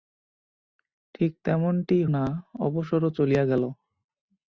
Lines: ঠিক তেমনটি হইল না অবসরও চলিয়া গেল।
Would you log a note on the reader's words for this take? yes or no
yes